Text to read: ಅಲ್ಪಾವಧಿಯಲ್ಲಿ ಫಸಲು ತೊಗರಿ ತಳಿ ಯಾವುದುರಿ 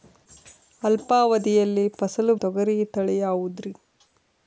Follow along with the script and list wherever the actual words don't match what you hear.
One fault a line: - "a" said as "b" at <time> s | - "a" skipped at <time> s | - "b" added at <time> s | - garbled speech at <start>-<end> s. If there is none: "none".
none